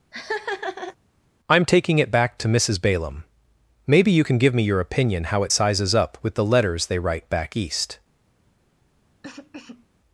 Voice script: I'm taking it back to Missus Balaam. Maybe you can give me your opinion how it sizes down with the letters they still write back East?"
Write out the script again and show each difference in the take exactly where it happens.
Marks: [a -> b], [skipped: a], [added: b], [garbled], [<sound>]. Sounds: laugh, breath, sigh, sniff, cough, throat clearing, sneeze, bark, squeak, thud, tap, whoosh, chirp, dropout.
[laugh] I'm taking it back to Missus Balaam. Maybe you can give me your opinion how it sizes [down -> up] with the letters they [skipped: still] write back East?" [cough]